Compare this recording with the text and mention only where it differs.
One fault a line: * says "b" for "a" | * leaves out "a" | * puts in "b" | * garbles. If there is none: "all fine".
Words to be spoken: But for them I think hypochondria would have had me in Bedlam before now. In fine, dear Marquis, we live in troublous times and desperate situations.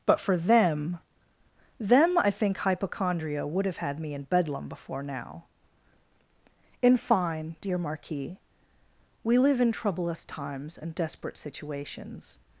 * puts in "them"